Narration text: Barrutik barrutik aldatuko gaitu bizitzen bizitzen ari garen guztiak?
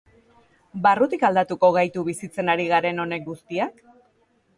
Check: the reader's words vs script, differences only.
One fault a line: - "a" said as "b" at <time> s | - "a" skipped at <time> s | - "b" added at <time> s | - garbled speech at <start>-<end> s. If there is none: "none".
- "barrutik" skipped at 1.2 s
- "bizitzen" skipped at 2.5 s
- "honek" added at 3.0 s